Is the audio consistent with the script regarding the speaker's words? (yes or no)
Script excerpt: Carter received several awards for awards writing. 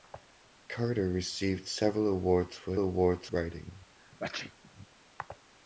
yes